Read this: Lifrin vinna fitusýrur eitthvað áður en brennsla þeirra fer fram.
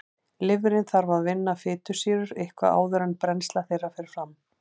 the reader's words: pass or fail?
fail